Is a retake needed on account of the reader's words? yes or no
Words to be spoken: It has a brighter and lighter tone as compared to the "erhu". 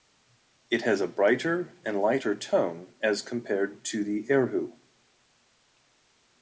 no